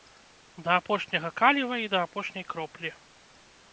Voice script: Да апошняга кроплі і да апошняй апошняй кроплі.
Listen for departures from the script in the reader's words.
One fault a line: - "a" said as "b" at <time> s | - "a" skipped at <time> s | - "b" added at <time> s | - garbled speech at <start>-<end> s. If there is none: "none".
- "кроплі" said as "каліва" at 1.4 s
- "апошняй" skipped at 2.4 s